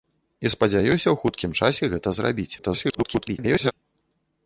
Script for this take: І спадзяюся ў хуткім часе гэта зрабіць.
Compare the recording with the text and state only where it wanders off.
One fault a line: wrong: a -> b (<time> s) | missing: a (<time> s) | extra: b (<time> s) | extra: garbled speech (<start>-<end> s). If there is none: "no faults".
extra: garbled speech (2.6-3.7 s)